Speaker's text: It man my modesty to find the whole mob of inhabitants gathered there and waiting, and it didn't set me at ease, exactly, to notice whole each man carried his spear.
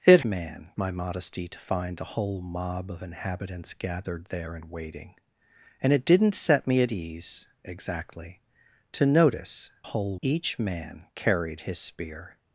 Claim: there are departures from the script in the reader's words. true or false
false